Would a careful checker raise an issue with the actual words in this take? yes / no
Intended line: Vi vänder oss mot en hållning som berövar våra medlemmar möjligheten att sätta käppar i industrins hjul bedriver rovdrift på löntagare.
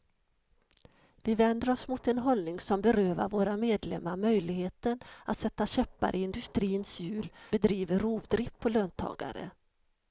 no